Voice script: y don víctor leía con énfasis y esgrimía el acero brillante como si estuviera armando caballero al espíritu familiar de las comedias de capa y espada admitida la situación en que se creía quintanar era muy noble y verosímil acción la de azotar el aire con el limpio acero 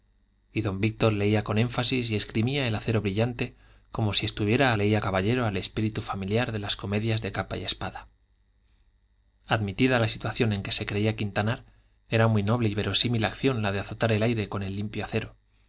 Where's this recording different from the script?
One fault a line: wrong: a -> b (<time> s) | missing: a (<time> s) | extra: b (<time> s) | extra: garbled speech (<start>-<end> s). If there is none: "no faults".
wrong: armando -> leía (4.7 s)